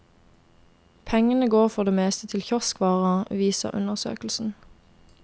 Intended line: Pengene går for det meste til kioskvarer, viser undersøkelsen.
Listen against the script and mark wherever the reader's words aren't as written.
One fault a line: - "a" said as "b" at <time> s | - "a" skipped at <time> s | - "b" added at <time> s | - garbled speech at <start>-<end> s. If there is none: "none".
none